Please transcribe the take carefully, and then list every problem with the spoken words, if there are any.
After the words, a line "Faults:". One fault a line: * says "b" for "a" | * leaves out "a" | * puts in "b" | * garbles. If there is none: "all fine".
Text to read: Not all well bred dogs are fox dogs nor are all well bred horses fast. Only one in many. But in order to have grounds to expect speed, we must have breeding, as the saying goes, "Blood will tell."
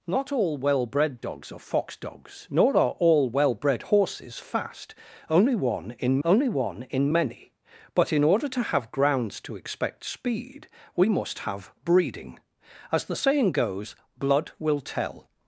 Not all well bred dogs are fox dogs nor are all well bred horses fast. Only one in only one in many. But in order to have grounds to expect speed, we must have breeding, as the saying goes, "Blood will tell."
Faults:
* puts in "only one in"